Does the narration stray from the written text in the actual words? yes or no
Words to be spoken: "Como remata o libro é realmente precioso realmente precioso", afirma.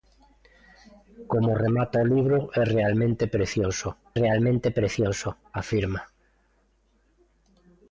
no